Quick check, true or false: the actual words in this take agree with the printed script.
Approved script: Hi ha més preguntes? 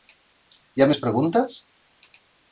true